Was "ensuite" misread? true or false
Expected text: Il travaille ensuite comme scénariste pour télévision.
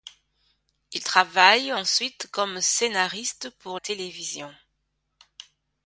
false